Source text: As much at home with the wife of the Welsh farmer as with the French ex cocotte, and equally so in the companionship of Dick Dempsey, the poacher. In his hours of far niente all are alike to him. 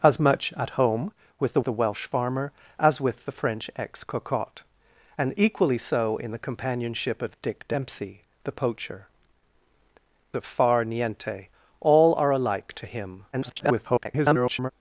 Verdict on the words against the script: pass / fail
fail